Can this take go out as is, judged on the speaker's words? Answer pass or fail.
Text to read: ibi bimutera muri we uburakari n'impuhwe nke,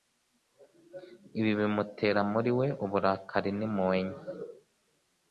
pass